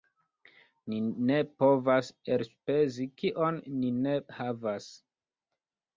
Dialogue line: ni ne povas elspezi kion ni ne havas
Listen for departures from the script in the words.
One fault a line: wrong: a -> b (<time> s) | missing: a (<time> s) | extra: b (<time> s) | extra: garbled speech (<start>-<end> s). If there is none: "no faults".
no faults